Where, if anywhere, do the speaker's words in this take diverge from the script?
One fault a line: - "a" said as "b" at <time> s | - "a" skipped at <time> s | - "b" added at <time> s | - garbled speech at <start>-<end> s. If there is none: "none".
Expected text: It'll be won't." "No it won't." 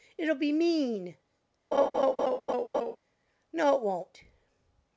- "won't" said as "mean" at 0.5 s